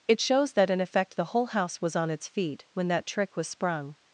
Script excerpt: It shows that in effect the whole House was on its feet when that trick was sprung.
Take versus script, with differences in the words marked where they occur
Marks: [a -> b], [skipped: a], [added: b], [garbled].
It shows that in effect the whole House was on its feet when that trick was sprung.